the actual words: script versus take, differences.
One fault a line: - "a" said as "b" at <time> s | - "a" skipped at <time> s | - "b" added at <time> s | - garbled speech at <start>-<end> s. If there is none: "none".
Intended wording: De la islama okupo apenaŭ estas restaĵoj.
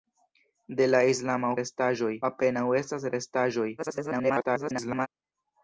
- "okupo" said as "restaĵoj" at 1.6 s
- garbled speech at 3.8-5.1 s